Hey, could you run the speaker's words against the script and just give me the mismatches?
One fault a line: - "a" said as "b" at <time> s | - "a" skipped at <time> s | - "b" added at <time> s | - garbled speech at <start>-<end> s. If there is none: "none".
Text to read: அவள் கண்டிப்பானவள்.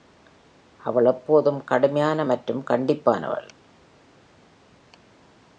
- "எப்போதும் கடுமையான மற்றும்" added at 1.1 s